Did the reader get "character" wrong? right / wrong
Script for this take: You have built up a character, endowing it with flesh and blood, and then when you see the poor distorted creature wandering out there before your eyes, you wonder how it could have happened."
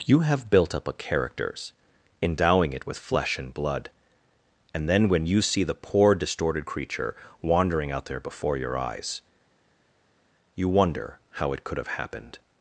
wrong